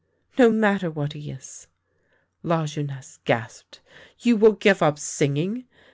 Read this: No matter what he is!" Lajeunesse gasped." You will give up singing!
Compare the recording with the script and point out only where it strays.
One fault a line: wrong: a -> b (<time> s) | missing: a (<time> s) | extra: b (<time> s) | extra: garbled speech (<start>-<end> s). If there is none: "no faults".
no faults